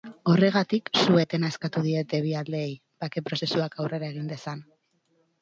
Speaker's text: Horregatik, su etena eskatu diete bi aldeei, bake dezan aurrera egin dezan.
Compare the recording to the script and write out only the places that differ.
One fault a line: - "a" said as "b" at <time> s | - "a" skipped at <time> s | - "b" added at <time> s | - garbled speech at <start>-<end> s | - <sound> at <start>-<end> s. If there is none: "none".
- "dezan" said as "prozesuak" at 3.3 s